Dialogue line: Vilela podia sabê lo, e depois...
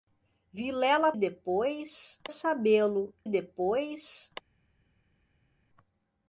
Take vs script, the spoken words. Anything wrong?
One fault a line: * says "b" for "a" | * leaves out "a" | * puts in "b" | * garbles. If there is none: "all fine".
* says "depois" for "podia"
* leaves out "e"